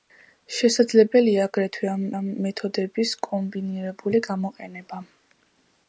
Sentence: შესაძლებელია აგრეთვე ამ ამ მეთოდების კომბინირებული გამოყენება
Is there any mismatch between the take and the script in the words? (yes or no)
no